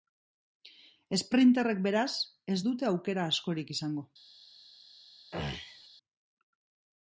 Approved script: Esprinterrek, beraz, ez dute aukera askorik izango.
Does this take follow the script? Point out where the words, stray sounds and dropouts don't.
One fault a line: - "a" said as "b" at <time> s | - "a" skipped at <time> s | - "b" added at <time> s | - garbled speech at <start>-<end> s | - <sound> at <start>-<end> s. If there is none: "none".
- throat clearing at 5.3-5.9 s